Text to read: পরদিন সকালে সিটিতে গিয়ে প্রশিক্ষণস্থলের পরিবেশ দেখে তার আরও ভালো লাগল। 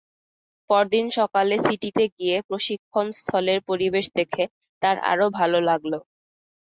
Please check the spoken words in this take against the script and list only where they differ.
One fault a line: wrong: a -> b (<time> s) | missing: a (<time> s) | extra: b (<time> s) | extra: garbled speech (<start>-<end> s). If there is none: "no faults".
no faults